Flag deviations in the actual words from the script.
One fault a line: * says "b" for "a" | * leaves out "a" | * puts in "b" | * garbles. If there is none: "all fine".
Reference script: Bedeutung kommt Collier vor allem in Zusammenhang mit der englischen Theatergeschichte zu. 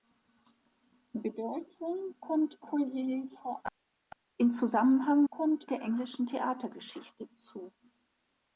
* says "kommt" for "mit"